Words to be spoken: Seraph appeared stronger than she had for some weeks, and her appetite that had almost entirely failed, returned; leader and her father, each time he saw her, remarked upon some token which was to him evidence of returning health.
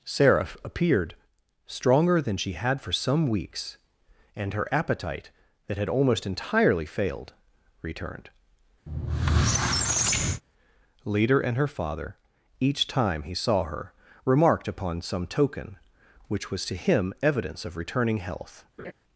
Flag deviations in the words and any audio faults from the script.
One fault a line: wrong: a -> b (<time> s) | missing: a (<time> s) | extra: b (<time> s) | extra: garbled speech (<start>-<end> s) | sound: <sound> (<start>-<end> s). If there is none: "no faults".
sound: squeak (8.9-10.4 s)
sound: laugh (18.8-18.9 s)